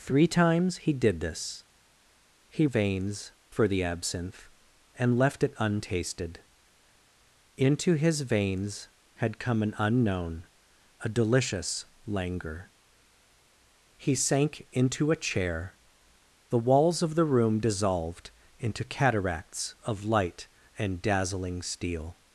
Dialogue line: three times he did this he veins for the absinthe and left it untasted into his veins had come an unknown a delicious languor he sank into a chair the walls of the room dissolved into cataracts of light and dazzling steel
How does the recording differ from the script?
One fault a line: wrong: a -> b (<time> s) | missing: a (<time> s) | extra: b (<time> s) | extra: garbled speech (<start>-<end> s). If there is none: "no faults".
no faults